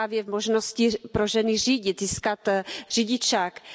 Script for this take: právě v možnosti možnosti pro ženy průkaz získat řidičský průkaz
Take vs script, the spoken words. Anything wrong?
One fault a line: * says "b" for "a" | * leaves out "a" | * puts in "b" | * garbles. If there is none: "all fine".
* leaves out "možnosti"
* says "řídit" for "průkaz"